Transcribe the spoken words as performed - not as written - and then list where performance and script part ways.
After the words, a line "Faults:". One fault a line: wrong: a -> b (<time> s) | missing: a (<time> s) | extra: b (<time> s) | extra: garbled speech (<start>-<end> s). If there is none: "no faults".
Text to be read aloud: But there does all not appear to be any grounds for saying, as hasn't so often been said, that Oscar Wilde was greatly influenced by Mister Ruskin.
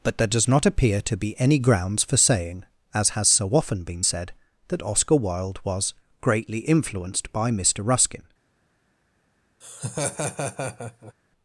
But there does not appear to be any grounds for saying, as has so often been said, that Oscar Wilde was greatly influenced by Mister Ruskin.
Faults:
missing: all (0.5 s)
wrong: hasn't -> has (3.1 s)